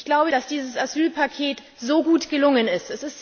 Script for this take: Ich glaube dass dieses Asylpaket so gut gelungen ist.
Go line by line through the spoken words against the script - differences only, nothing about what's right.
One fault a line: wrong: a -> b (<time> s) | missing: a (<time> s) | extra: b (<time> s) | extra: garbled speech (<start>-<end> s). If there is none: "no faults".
no faults